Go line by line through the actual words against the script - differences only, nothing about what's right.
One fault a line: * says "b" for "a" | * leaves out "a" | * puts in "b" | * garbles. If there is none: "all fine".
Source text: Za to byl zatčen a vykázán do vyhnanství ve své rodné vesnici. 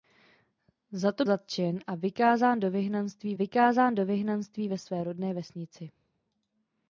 * leaves out "byl"
* puts in "vykázán do vyhnanství"